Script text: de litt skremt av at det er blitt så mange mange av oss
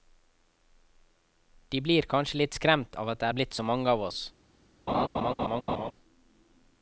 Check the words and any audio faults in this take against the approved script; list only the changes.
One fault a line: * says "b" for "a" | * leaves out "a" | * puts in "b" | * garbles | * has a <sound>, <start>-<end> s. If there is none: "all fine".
* puts in "blir kanskje"
* leaves out "mange"
* has a laugh, 4.9-5.9 s